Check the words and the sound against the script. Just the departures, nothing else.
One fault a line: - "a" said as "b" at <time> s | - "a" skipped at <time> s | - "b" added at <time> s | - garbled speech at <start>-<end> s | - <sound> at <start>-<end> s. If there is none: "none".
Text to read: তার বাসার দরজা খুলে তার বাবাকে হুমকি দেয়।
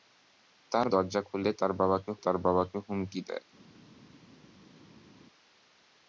- "বাসার" skipped at 0.9 s
- "তার বাবাকে" added at 2.2 s